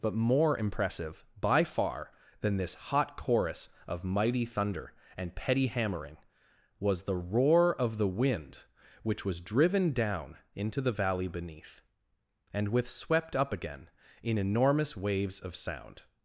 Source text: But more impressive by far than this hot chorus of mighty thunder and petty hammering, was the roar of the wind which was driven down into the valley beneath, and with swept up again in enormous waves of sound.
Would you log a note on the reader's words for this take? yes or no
no